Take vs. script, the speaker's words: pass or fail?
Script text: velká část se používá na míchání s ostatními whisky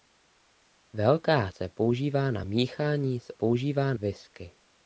fail